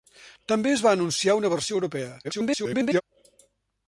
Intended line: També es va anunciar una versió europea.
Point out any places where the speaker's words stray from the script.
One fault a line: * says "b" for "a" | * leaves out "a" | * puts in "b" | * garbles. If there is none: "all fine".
* garbles